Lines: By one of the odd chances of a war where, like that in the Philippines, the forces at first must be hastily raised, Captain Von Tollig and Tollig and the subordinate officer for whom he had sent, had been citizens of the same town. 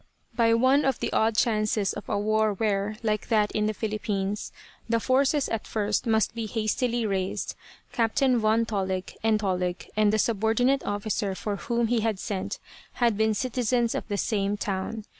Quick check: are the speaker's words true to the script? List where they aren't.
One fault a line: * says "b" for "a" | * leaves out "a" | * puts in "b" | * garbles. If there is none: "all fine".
all fine